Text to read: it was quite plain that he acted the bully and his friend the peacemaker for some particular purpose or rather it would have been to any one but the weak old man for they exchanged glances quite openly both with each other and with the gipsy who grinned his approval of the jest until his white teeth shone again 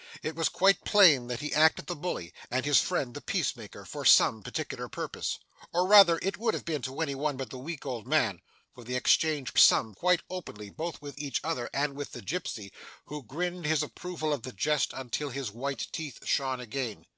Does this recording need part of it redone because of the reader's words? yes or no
yes